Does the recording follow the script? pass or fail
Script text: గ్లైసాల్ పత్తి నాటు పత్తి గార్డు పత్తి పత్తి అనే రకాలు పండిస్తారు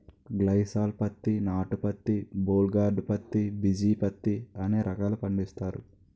fail